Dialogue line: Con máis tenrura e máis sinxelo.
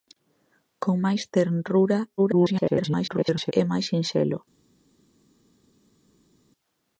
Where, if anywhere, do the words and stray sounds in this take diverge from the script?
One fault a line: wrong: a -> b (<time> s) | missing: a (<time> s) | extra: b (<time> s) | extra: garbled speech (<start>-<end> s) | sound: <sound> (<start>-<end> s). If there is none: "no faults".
extra: garbled speech (2.2-3.5 s)